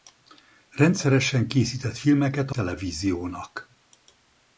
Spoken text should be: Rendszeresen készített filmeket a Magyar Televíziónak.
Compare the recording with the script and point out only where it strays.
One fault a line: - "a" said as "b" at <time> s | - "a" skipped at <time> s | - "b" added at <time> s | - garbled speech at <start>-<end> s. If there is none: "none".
- "Magyar" skipped at 2.5 s